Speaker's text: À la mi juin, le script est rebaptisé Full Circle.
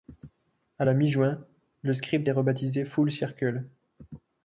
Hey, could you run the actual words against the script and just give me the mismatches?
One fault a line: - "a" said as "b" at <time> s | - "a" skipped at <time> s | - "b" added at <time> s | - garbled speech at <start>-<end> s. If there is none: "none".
none